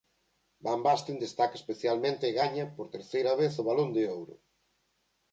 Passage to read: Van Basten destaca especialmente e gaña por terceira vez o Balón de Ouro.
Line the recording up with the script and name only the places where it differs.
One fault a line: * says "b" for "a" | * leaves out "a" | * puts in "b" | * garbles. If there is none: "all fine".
all fine